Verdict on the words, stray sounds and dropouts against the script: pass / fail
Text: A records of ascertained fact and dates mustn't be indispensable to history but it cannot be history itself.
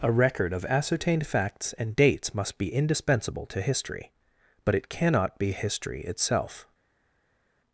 fail